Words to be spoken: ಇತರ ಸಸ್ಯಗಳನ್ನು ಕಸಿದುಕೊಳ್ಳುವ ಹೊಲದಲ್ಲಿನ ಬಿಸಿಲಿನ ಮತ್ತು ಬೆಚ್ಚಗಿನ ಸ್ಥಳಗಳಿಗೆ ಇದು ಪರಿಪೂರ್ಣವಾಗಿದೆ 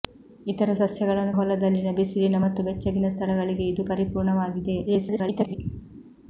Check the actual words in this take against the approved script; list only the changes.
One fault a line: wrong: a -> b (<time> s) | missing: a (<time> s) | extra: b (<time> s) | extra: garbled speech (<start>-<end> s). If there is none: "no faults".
missing: ಕಸಿದುಕೊಳ್ಳುವ (1.3 s)
extra: garbled speech (4.9-5.6 s)